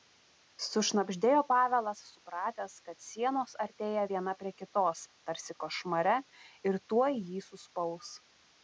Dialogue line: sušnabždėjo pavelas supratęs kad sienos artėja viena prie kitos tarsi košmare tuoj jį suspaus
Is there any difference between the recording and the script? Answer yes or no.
yes